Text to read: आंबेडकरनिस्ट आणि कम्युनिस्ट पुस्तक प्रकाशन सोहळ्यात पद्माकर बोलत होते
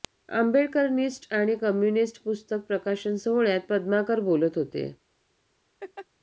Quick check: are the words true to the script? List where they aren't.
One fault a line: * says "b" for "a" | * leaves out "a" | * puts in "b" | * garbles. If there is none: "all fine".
all fine